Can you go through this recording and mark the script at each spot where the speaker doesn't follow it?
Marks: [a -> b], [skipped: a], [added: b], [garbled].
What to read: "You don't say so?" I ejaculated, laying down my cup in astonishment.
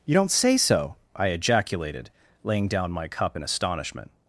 "You don't say so?" I ejaculated, laying down my cup in astonishment.